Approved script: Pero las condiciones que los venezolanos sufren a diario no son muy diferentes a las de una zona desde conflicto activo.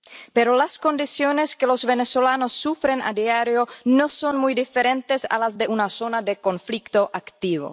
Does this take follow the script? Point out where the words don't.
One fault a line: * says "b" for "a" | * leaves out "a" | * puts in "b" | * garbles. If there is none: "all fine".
* says "de" for "desde"